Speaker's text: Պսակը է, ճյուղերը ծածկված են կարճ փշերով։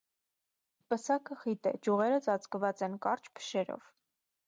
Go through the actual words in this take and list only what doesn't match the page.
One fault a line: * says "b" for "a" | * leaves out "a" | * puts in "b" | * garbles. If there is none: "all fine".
* puts in "խիտ"